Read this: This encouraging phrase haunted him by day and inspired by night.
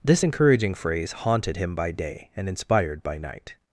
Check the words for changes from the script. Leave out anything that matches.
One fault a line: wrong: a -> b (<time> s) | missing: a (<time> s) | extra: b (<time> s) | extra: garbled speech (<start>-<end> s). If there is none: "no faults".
no faults